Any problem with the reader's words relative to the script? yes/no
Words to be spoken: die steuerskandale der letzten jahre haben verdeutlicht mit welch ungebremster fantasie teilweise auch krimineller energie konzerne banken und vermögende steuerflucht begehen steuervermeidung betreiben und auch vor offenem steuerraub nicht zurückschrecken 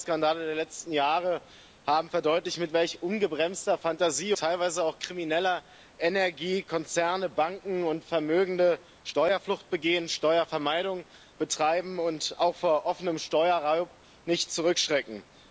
no